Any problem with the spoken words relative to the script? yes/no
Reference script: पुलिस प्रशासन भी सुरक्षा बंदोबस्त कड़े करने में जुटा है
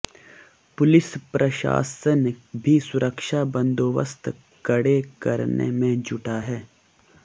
no